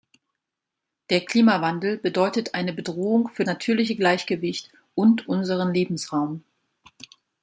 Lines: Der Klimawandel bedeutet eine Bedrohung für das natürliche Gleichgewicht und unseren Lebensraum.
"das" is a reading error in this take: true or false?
true